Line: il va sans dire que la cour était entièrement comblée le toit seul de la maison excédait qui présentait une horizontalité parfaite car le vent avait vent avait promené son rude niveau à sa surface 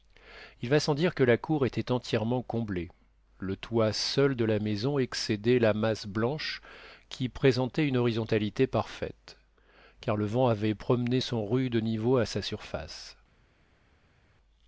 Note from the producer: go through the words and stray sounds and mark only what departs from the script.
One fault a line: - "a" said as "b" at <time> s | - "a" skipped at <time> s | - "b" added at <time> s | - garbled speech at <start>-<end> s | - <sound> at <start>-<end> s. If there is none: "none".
- "la masse blanche" added at 5.6 s
- "vent avait" skipped at 10.7 s